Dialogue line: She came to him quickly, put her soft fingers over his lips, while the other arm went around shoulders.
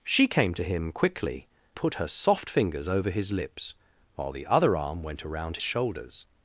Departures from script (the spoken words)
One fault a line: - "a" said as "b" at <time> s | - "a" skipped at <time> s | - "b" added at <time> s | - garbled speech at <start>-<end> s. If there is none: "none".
none